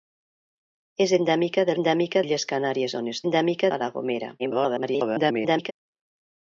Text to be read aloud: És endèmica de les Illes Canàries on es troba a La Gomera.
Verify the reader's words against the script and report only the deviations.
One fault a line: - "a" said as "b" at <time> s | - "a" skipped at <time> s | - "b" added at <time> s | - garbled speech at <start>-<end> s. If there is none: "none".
- "les" said as "endèmica" at 1.8 s
- "troba" said as "endèmica" at 3.2 s
- garbled speech at 4.4-5.7 s